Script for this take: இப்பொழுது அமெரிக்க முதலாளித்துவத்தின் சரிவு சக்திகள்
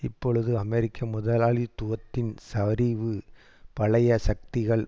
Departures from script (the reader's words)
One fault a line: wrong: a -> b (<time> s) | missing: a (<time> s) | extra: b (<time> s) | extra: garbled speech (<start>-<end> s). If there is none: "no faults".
extra: பழைய (3.7 s)